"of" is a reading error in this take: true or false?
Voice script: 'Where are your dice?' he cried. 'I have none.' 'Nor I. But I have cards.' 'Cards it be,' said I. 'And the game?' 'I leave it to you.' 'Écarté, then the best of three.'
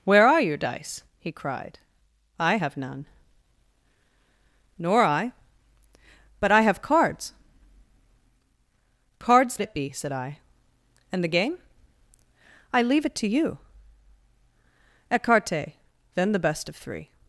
false